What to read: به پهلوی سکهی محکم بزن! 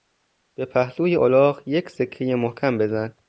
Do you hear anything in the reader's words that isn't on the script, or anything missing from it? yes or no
yes